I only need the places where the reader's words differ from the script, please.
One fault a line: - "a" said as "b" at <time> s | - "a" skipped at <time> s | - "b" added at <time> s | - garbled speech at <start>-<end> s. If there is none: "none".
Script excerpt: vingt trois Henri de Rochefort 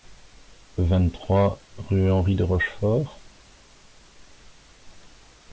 - "rue" added at 1.8 s